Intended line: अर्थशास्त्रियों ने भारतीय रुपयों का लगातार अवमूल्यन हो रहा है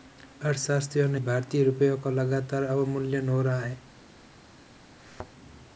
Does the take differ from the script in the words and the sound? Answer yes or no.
yes